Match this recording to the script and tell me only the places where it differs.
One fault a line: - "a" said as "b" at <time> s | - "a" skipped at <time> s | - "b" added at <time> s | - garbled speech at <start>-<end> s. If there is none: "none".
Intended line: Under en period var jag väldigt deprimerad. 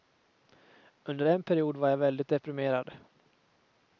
none